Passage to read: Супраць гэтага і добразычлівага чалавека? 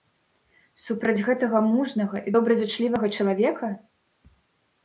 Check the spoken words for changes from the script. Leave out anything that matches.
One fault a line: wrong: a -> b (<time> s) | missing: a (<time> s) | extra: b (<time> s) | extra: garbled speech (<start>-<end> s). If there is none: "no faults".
extra: мужнага (1.7 s)